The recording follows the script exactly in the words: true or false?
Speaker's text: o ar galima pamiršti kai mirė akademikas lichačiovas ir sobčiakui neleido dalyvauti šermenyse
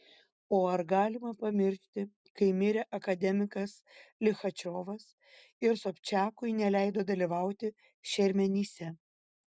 true